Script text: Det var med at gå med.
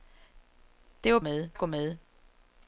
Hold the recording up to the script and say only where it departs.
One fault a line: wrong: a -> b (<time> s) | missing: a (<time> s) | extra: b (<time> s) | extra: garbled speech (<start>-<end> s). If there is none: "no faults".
no faults